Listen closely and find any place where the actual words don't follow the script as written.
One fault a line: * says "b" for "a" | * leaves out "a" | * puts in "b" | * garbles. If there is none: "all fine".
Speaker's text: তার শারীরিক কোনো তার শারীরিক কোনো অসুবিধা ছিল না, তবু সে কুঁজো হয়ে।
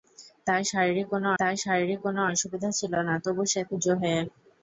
all fine